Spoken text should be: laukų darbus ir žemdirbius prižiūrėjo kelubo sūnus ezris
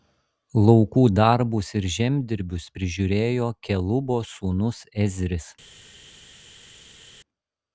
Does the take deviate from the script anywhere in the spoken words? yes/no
no